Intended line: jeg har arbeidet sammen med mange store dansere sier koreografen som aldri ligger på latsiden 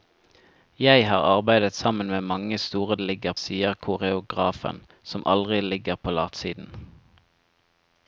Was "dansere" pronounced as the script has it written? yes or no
no